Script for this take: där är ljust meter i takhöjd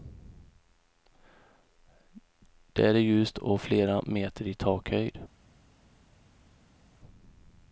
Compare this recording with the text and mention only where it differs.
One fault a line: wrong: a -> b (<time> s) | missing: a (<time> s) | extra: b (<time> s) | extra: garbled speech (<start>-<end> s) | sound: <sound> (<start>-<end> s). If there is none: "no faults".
extra: och flera (3.4 s)